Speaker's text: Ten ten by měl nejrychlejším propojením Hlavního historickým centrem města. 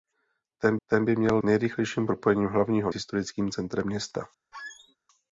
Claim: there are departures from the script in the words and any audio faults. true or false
true